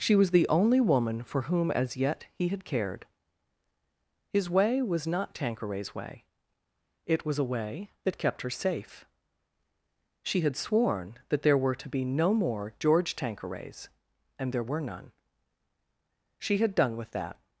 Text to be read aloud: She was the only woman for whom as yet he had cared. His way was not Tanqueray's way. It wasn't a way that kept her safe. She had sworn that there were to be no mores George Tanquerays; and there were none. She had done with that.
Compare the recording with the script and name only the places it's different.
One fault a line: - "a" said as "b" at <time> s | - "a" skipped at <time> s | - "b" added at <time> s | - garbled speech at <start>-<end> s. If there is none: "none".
- "wasn't" said as "was" at 7.2 s
- "mores" said as "more" at 12.3 s